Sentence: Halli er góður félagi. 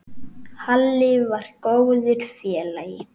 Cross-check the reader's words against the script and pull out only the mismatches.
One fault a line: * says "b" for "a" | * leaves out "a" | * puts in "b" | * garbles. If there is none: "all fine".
* says "var" for "er"